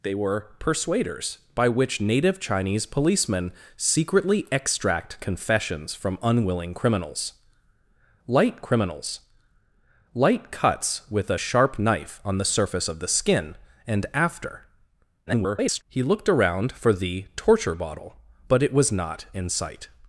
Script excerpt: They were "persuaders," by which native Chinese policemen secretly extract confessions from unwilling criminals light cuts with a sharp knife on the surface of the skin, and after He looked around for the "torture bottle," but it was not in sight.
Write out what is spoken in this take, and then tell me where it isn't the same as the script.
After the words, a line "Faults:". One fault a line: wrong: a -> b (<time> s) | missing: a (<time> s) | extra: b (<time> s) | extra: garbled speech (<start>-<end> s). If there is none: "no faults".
They were "persuaders," by which native Chinese policemen secretly extract confessions from unwilling criminals light criminals light cuts with a sharp knife on the surface of the skin, and after [garbled] He looked around for the "torture bottle," but it was not in sight.
Faults:
extra: criminals light (8.6 s)
extra: garbled speech (15.3-15.8 s)